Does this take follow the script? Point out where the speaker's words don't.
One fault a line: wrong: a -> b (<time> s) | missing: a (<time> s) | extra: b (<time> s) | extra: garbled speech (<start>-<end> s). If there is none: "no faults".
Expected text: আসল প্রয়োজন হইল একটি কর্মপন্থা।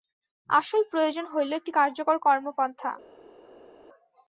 extra: কার্যকর (1.8 s)